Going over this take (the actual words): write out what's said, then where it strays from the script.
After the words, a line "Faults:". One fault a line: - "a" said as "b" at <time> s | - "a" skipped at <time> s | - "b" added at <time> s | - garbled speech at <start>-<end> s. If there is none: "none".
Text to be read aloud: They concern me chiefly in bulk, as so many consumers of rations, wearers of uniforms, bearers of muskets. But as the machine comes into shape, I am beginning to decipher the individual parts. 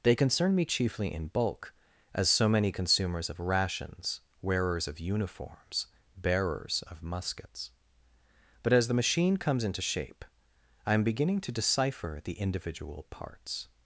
They concern me chiefly in bulk, as so many consumers of rations, wearers of uniforms, bearers of muskets. But as the machine comes into shape, I am beginning to decipher the individual parts.
Faults:
none